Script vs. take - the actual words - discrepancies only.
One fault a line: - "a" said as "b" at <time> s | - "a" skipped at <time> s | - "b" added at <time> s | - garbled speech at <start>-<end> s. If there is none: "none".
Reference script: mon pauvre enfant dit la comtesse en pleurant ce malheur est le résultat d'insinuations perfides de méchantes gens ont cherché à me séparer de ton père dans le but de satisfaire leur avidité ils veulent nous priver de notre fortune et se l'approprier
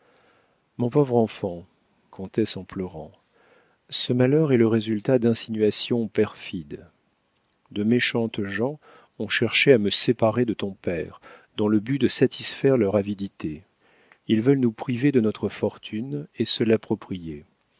- "dit la" skipped at 1.6 s